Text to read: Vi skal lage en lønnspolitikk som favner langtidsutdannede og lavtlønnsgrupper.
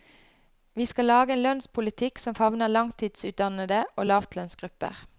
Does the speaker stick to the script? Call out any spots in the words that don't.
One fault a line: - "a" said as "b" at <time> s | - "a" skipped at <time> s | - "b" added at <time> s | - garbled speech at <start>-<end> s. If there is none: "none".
none